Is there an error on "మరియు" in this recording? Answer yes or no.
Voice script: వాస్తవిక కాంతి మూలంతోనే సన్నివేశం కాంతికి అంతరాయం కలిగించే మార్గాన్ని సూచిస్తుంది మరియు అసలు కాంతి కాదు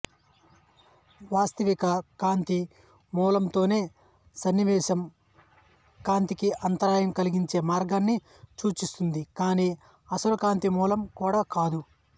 yes